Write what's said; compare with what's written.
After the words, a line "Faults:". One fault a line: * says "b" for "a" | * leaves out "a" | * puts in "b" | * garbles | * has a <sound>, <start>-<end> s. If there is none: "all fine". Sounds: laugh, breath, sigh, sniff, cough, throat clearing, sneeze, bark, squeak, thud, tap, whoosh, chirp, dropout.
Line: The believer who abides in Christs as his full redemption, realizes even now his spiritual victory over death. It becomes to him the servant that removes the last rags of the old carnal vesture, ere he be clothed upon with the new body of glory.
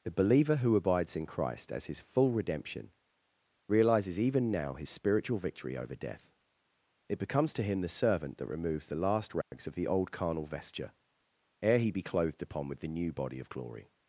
The believer who abides in Christ as his full redemption, realizes even now his spiritual victory over death. It becomes to him the servant that removes the last rags of the old carnal vesture, ere he be clothed upon with the new body of glory.
Faults:
* says "Christ" for "Christs"
* has a dropout, 9.4-9.5 s